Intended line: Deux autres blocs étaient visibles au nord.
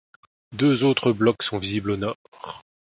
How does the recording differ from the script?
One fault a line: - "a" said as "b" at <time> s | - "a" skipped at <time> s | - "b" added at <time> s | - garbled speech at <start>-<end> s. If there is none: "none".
- "étaient" said as "sont" at 1.4 s